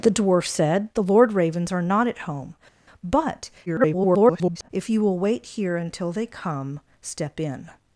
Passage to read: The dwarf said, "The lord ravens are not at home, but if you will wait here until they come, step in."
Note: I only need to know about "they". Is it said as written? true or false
true